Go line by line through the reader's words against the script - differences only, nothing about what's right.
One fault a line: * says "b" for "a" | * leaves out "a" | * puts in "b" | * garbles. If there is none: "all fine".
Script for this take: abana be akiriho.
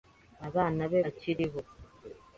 all fine